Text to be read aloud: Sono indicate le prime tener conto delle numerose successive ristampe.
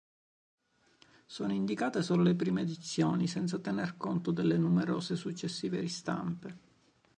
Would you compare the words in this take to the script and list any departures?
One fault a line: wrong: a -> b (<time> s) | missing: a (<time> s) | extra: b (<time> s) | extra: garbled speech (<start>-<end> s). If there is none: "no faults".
extra: solo (2.0 s)
extra: edizioni senza (2.6 s)